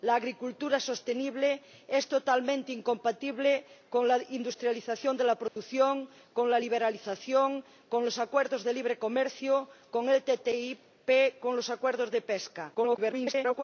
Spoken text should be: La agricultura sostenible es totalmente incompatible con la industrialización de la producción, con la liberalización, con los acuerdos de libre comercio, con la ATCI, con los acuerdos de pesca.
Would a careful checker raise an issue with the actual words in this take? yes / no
yes